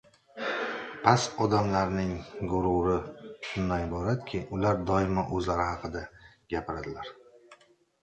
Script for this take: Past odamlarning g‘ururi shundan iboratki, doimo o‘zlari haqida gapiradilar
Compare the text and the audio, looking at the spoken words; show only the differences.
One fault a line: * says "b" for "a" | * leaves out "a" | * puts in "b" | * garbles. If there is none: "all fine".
* puts in "ular"